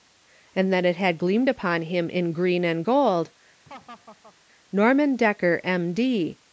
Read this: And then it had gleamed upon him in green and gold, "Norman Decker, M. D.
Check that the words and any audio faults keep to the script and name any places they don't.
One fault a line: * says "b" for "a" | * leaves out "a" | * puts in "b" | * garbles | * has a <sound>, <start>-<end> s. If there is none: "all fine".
* has a laugh, 3.7-4.4 s